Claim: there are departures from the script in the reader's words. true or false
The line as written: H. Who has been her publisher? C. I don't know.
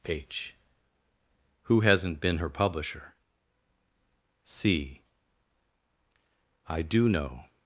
true